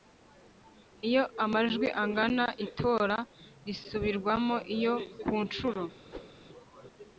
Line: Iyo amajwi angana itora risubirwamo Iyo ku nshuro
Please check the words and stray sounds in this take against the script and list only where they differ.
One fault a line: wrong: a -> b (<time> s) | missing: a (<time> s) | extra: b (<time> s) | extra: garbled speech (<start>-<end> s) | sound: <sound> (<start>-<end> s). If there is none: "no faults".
sound: whoosh (6.1-6.3 s)